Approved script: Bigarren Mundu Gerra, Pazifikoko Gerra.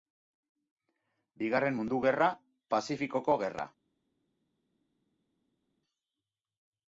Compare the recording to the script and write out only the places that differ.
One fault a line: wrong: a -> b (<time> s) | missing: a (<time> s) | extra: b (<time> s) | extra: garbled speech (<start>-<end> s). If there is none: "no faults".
no faults